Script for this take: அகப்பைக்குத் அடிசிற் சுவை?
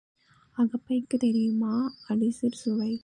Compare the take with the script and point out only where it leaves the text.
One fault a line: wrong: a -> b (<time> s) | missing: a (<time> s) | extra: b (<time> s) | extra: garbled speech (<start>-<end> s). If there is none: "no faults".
extra: தெரியுமா (1.2 s)